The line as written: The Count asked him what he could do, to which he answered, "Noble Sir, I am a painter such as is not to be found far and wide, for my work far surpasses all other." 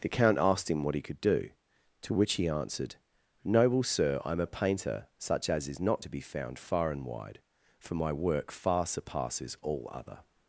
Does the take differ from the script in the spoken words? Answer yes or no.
no